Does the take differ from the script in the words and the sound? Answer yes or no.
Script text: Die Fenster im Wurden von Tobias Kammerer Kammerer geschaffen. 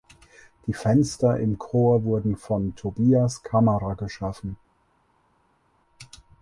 yes